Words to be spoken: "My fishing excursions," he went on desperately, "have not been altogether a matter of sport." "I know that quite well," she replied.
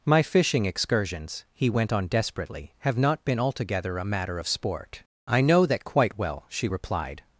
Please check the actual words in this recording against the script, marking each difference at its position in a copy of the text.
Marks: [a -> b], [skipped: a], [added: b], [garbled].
"My fishing excursions," he went on desperately, "have not been altogether a matter of sport." "I know that quite well," she replied.